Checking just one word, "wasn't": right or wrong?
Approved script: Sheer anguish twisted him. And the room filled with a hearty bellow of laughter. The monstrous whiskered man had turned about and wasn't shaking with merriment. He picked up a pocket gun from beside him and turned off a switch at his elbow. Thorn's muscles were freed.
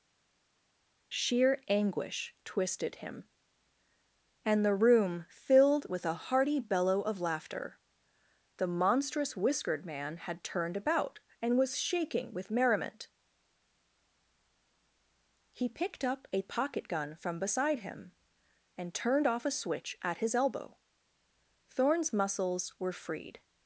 wrong